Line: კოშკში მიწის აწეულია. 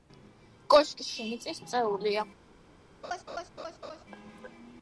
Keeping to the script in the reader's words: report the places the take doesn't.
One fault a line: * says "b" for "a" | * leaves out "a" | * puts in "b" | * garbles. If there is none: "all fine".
all fine